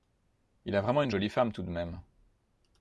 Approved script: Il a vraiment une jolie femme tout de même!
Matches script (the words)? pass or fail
pass